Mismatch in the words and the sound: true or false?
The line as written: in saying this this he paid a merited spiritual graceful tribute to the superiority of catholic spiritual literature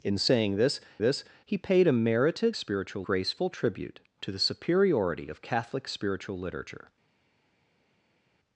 false